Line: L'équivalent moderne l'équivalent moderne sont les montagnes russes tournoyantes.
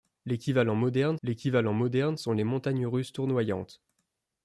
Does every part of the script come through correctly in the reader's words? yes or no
yes